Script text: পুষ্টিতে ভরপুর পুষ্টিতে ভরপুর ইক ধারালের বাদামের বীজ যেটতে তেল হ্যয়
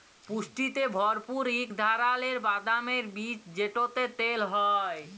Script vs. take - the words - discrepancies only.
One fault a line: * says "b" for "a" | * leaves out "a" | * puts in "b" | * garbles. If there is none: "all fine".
* leaves out "পুষ্টিতে ভরপুর"